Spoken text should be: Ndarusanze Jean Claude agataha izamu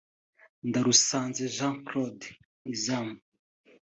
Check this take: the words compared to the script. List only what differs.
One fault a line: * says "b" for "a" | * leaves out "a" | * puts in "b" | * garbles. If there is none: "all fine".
* leaves out "agataha"